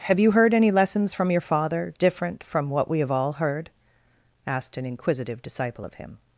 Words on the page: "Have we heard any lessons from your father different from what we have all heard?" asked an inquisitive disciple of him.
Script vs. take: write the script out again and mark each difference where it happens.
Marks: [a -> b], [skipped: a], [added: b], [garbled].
"Have [we -> you] heard any lessons from your father different from what we have all heard?" asked an inquisitive disciple of him.